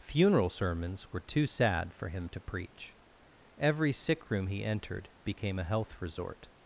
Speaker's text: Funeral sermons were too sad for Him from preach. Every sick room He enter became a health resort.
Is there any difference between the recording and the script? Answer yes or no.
yes